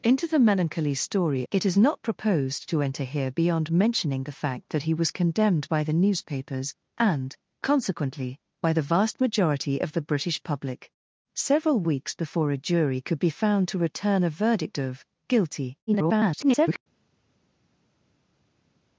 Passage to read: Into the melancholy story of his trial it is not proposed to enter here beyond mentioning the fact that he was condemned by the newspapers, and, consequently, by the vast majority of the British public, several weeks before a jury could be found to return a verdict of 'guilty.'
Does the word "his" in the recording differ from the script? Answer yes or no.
yes